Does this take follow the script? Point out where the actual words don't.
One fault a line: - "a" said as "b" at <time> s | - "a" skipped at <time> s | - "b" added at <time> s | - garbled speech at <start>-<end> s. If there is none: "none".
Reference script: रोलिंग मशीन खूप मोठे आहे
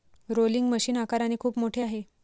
- "आकाराने" added at 1.0 s